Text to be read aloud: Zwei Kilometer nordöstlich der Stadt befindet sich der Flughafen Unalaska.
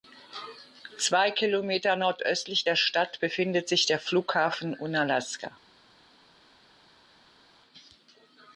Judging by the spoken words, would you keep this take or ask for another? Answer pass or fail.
pass